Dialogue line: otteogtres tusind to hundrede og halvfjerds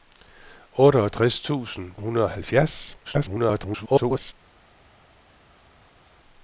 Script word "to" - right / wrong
wrong